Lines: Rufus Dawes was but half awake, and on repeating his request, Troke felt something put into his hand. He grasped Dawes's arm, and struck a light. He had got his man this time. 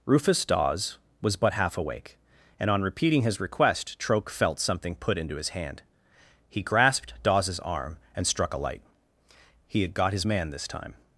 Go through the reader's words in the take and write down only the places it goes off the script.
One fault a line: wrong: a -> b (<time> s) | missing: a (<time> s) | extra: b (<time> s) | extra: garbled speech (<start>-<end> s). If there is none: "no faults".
no faults